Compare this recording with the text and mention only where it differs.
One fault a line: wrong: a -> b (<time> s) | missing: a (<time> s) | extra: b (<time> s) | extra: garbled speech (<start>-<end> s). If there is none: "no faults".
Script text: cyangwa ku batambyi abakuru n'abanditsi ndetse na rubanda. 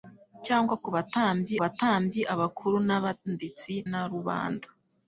extra: batambyi (1.6 s)
missing: ndetse (3.7 s)